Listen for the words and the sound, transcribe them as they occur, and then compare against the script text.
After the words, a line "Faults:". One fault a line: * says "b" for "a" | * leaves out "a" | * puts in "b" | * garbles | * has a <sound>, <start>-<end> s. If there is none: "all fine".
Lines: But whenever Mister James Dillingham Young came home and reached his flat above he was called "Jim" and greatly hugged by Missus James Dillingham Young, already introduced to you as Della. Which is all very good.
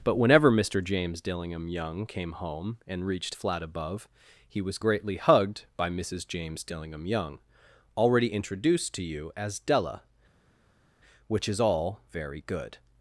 But whenever Mister James Dillingham Young came home and reached flat above he was greatly hugged by Missus James Dillingham Young, already introduced to you as Della. Which is all very good.
Faults:
* leaves out "his"
* leaves out "called Jim and"